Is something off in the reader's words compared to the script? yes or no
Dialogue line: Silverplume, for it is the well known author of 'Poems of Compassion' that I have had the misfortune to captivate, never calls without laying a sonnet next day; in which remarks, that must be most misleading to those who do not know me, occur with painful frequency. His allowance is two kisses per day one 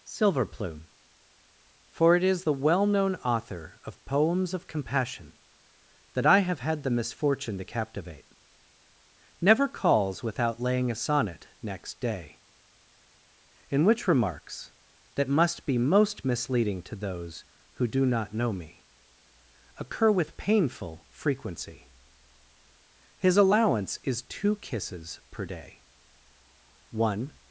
no